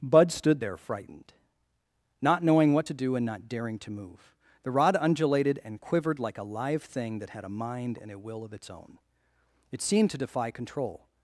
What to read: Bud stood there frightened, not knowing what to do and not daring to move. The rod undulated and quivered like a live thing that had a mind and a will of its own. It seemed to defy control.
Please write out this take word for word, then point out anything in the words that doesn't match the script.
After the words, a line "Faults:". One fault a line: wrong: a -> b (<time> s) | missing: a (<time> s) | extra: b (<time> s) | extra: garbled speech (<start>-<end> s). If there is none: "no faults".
Bud stood there frightened, not knowing what to do and not daring to move. The rod undulated and quivered like a live thing that had a mind and a will of its own. It seemed to defy control.
Faults:
no faults